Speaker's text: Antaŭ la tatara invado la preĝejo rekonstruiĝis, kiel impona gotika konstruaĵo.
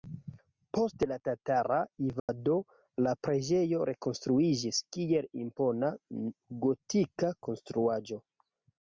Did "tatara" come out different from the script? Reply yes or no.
no